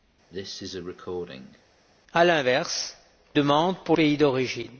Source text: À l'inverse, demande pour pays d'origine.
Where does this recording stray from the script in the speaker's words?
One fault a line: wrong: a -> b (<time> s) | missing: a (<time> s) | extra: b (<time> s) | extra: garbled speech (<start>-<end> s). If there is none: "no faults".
no faults